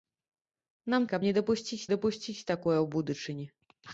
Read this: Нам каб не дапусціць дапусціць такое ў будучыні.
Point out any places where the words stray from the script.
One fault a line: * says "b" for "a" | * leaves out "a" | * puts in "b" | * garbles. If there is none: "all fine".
all fine